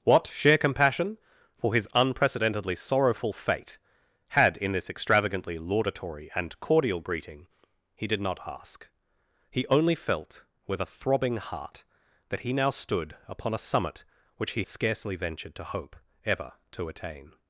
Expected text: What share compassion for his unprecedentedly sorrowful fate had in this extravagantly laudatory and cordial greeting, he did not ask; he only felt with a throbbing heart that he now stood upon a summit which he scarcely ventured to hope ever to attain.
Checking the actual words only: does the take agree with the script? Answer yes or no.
yes